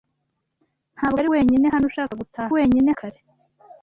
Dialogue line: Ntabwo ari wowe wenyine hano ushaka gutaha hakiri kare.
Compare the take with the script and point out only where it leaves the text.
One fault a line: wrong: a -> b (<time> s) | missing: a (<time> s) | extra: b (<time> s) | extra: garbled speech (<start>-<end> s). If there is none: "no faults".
missing: wowe (1.3 s)
wrong: hakiri -> wenyine (2.6 s)